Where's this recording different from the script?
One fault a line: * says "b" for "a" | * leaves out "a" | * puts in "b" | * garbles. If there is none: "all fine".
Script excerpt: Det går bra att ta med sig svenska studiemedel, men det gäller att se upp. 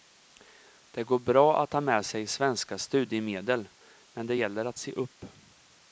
all fine